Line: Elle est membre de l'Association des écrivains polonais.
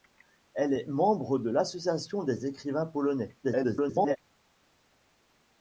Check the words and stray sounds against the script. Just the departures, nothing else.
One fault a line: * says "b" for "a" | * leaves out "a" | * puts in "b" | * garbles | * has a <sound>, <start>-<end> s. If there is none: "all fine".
* garbles